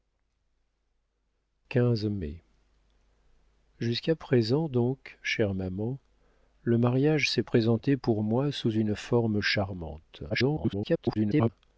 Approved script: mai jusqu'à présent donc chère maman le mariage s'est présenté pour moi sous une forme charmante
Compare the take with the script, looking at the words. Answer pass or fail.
fail